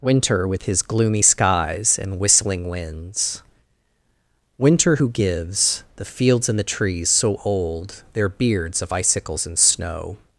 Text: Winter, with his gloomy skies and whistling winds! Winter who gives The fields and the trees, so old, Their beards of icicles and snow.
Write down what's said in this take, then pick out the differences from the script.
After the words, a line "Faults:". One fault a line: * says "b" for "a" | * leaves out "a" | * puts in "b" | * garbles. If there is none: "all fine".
Winter, with his gloomy skies and whistling winds! Winter who gives The fields and the trees, so old, Their beards of icicles and snow.
Faults:
all fine